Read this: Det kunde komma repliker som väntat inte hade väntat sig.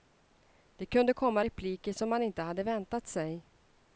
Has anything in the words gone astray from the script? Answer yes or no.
yes